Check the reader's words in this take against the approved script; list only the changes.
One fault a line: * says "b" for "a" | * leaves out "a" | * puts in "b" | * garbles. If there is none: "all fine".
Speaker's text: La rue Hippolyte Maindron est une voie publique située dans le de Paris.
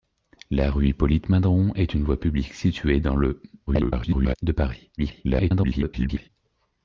* garbles
* garbles